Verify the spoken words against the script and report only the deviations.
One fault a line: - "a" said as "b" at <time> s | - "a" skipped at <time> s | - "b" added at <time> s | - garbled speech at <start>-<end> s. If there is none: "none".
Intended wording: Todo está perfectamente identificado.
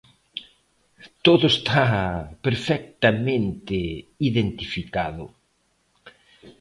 none